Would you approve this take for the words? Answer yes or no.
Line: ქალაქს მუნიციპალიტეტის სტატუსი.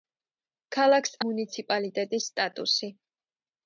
yes